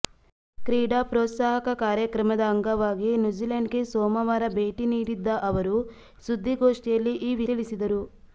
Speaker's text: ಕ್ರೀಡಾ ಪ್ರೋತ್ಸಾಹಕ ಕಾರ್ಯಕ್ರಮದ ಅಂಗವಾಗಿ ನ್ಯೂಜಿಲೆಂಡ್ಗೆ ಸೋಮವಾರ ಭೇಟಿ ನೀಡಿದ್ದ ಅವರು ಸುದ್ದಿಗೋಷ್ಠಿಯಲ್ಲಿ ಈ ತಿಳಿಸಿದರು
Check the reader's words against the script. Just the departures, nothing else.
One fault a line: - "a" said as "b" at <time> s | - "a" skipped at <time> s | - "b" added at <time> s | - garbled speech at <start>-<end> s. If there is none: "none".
none